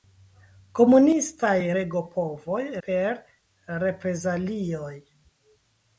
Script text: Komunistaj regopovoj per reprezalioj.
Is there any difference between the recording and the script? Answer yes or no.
no